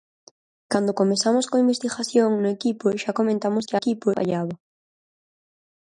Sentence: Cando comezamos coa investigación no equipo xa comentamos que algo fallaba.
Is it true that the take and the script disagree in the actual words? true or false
true